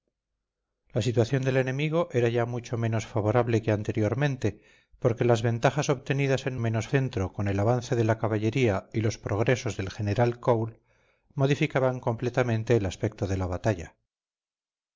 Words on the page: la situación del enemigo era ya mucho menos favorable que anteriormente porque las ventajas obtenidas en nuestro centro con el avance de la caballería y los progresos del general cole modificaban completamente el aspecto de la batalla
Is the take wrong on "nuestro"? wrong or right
wrong